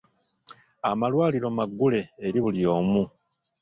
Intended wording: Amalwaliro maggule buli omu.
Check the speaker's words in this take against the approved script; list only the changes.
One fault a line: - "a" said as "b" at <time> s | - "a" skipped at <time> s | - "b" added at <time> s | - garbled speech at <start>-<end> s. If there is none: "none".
- "eri" added at 2.2 s